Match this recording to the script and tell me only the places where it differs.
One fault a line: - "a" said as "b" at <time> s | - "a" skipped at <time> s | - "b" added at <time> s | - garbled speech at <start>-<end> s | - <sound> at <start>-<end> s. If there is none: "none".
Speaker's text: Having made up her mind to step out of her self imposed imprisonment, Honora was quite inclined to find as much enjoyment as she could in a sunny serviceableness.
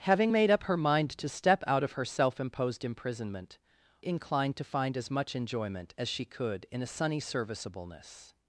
- "Honora was quite" skipped at 3.6 s